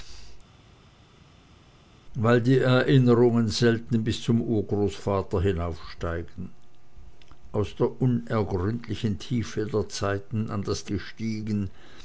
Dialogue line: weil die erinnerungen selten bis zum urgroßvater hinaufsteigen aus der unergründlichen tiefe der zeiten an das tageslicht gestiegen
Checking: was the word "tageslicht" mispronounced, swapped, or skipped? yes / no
yes